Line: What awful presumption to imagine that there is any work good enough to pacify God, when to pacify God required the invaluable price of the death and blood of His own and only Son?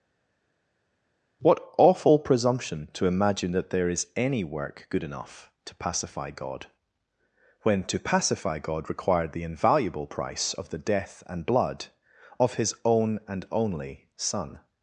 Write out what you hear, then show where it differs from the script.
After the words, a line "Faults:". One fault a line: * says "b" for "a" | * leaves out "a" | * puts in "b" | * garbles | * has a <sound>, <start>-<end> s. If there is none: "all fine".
What awful presumption to imagine that there is any work good enough to pacify God, when to pacify God required the invaluable price of the death and blood of His own and only Son?
Faults:
all fine